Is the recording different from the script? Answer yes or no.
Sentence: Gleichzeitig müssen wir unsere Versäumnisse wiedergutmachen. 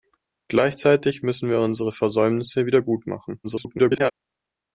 yes